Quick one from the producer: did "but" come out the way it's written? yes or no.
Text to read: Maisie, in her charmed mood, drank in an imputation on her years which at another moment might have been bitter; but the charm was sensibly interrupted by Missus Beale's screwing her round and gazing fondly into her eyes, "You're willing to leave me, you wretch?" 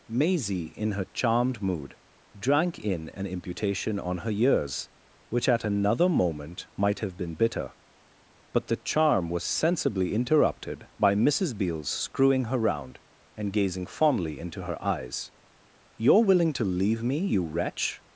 yes